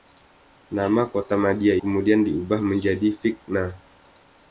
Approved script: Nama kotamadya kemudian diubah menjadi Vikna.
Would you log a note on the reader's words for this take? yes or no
no